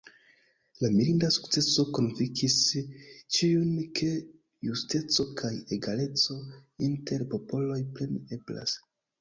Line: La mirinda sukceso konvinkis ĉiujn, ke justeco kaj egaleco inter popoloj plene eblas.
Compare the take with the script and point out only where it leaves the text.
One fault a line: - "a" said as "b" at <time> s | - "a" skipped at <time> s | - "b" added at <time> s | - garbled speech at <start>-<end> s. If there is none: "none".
none